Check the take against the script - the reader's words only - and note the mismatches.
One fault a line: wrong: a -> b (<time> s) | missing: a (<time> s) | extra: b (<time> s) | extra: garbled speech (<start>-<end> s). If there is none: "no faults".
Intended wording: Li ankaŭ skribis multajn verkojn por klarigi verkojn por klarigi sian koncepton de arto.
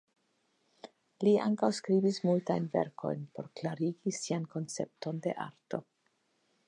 missing: verkojn por klarigi (4.2 s)